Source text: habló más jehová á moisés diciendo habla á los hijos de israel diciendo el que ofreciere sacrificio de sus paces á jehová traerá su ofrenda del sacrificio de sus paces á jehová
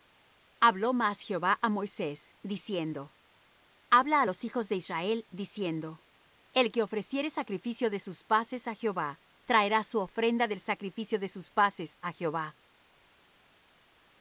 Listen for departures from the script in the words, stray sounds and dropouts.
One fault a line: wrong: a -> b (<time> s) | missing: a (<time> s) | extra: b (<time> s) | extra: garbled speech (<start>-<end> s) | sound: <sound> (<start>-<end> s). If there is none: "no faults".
no faults